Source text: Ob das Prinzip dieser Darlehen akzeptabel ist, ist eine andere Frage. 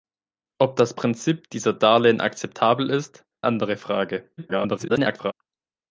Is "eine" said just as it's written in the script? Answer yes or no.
no